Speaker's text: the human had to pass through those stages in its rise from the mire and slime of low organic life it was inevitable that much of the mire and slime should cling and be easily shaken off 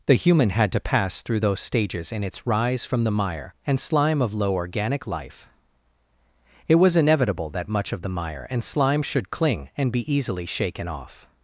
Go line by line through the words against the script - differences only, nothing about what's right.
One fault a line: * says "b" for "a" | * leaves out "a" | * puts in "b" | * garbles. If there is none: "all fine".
all fine